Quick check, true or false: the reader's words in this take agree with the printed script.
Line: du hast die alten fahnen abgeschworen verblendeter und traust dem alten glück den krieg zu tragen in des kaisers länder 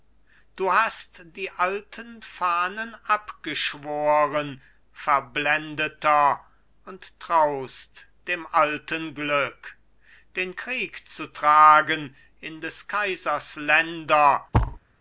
true